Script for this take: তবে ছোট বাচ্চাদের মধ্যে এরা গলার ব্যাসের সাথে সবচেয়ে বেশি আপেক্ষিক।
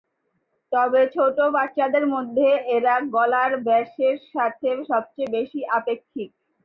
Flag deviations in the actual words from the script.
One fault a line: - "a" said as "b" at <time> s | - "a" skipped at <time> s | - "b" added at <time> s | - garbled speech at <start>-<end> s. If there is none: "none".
none